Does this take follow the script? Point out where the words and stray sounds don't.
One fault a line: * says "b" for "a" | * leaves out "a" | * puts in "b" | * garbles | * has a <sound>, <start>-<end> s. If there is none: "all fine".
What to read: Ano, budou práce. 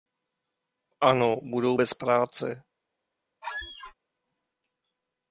* puts in "bez"
* has a squeak, 3.4-3.9 s